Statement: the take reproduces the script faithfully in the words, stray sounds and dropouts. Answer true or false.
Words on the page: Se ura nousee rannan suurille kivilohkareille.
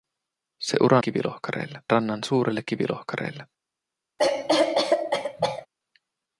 false